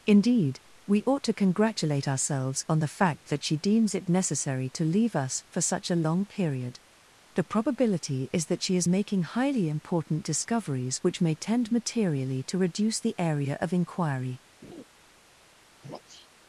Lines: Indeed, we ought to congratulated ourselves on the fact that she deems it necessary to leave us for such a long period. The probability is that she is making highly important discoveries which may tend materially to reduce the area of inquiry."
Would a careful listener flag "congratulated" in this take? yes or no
yes